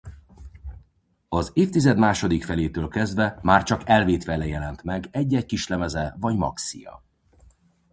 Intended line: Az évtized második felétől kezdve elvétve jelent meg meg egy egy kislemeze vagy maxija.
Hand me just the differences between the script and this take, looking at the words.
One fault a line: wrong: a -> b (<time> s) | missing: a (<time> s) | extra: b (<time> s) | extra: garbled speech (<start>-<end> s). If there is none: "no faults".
extra: már csak (3.4 s)
missing: meg (5.1 s)